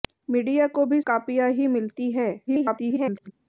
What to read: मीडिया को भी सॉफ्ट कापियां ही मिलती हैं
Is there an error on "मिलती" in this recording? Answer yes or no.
no